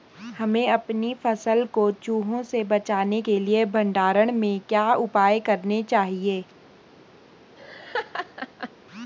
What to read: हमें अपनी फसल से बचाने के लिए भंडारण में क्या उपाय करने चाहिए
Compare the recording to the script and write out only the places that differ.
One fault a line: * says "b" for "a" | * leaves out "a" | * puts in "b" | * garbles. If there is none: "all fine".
* puts in "को चूहों"